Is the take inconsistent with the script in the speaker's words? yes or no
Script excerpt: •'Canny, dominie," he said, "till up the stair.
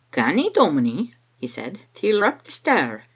no